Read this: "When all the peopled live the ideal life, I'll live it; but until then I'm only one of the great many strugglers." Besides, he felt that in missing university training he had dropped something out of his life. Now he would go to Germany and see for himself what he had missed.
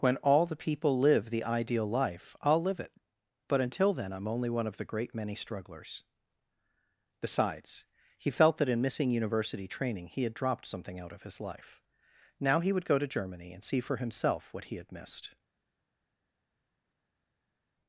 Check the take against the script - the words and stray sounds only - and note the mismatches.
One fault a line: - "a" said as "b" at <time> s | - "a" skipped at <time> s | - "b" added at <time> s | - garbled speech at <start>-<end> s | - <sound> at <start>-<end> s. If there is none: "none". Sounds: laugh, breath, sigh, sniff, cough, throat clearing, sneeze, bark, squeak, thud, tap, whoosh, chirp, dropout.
- "peopled" said as "people" at 0.6 s